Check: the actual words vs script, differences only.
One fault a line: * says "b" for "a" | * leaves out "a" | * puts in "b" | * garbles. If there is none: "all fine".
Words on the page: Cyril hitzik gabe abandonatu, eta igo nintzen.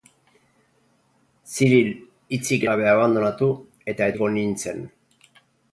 all fine